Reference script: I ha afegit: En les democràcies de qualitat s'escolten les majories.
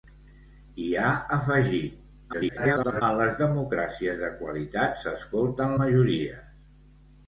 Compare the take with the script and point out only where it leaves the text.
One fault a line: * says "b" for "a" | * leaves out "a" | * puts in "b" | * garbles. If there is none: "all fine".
* garbles
* leaves out "les"